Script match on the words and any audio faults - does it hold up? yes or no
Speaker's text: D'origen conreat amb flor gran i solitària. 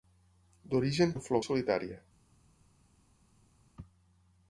no